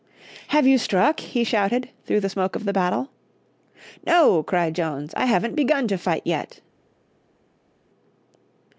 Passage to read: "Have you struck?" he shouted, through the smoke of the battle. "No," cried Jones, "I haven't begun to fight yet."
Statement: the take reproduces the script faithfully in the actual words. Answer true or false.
true